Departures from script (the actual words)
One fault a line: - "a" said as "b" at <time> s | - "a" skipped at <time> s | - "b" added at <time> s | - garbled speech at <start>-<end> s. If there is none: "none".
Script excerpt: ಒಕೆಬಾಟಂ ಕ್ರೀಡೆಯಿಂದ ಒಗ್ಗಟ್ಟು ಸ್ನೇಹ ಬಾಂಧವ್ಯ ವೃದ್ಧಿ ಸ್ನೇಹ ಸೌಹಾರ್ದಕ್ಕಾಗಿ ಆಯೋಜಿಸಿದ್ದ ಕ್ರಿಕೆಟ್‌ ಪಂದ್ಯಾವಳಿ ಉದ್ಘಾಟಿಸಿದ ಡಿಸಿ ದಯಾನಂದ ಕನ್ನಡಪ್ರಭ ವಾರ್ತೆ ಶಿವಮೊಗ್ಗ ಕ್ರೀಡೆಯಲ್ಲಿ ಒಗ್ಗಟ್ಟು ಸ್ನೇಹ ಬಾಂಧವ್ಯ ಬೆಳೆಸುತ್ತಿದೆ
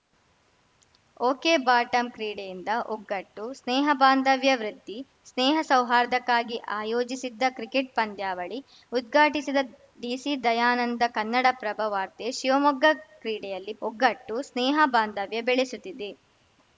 none